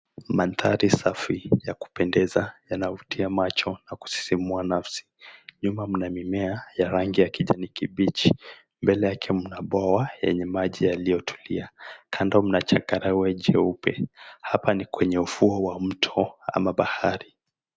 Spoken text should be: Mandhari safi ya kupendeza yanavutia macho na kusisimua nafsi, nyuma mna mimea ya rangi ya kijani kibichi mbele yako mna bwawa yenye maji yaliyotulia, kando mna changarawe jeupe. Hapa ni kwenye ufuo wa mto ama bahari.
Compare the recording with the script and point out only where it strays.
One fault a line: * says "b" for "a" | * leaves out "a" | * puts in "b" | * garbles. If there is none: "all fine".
* says "yake" for "yako"